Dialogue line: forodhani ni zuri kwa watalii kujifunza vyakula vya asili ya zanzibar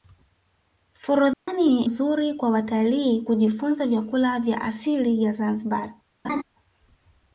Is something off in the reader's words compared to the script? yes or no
no